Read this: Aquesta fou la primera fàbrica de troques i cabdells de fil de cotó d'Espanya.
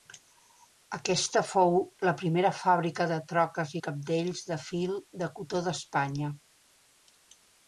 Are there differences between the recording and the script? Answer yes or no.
no